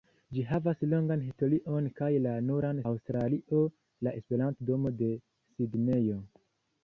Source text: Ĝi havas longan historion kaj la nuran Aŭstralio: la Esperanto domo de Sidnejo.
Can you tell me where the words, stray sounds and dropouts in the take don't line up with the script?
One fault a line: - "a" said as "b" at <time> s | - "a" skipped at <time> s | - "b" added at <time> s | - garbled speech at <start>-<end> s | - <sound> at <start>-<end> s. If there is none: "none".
none